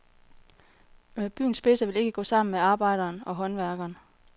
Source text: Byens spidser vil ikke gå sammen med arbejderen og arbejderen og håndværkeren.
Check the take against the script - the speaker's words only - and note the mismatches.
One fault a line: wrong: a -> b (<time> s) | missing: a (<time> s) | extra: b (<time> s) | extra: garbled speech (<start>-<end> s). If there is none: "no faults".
missing: arbejderen og (3.4 s)